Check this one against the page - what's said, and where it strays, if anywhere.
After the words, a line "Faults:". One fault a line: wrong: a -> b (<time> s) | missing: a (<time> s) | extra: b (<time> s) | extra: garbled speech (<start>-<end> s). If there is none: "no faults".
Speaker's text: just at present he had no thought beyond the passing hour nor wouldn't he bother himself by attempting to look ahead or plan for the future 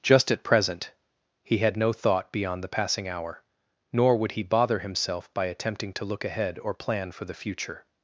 just at present he had no thought beyond the passing hour nor would he bother himself by attempting to look ahead or plan for the future
Faults:
wrong: wouldn't -> would (4.2 s)